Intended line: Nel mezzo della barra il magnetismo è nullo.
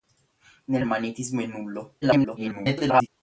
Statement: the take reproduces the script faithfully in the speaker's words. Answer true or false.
false